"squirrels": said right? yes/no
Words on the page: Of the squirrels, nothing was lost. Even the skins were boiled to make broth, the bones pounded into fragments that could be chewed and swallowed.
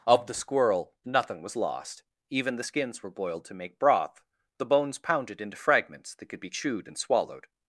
no